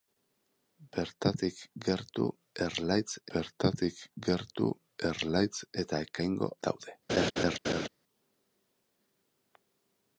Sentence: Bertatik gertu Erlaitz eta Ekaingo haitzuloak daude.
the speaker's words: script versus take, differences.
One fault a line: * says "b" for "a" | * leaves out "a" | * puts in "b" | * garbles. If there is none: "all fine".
* puts in "bertatik gertu Erlaitz"
* leaves out "haitzuloak"